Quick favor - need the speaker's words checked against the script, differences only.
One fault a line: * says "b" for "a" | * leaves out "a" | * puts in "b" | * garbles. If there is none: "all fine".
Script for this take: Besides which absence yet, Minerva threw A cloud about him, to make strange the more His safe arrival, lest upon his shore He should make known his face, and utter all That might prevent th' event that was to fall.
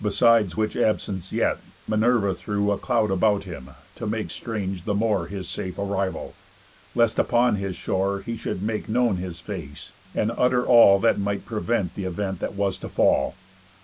all fine